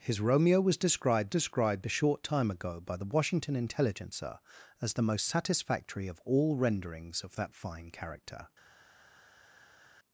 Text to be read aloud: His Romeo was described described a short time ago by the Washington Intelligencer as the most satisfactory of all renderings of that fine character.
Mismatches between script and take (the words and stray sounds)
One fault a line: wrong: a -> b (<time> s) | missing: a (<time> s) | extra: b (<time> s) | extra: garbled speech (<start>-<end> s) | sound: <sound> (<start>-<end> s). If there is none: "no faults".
no faults